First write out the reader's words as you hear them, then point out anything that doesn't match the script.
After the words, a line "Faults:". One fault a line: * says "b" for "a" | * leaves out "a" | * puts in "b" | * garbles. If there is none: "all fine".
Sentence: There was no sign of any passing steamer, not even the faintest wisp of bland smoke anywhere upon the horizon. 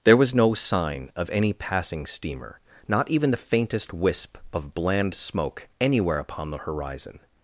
There was no sign of any passing steamer, not even the faintest wisp of bland smoke anywhere upon the horizon.
Faults:
all fine